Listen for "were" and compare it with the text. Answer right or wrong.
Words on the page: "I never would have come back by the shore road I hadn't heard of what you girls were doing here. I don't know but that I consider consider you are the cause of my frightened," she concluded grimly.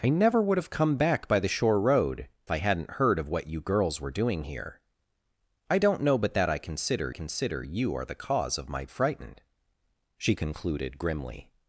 right